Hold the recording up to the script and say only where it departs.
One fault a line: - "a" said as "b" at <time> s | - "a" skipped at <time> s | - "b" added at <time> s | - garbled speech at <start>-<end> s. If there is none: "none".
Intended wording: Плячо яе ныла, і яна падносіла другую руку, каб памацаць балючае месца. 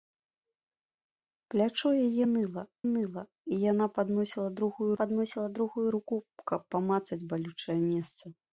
- "ныла" added at 2.9 s
- "падносіла другую" added at 5.0 s